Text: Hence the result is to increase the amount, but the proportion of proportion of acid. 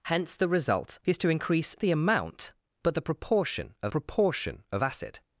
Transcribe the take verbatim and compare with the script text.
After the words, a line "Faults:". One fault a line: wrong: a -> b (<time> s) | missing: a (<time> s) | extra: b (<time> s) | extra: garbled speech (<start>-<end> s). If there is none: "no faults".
Hence the result is to increase the amount, but the proportion of proportion of acid.
Faults:
no faults